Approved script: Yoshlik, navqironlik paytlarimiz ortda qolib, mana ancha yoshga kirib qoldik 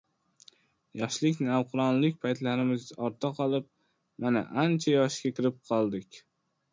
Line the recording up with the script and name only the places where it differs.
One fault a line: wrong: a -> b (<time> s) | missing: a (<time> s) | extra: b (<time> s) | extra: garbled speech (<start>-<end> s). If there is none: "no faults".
no faults